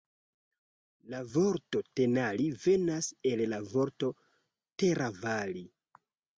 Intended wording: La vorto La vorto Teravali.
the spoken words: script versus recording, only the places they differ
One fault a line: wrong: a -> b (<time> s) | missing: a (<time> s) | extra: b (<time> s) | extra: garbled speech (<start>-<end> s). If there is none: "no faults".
extra: Tenali venas el (2.0 s)